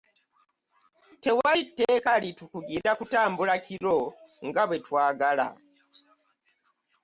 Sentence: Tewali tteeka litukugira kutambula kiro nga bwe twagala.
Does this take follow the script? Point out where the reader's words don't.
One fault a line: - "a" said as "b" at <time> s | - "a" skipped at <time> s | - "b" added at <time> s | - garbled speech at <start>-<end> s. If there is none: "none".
none